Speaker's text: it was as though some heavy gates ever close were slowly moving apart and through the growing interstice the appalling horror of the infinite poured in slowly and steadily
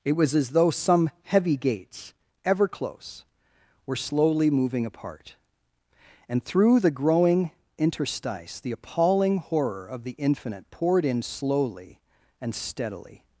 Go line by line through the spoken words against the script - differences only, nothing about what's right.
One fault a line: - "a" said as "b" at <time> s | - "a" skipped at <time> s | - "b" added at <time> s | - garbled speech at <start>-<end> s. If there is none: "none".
none